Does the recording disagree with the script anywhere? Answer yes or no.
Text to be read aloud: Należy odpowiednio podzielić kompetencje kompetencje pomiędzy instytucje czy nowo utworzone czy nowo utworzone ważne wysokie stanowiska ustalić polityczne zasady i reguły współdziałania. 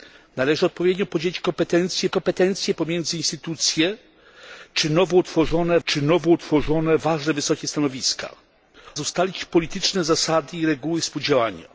no